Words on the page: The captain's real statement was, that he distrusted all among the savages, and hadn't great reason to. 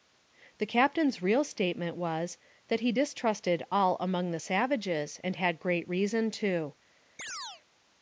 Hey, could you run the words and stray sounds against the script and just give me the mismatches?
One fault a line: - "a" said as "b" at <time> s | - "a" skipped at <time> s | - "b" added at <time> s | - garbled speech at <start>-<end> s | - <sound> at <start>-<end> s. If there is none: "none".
- "hadn't" said as "had" at 5.4 s
- chirp at 7.2-7.6 s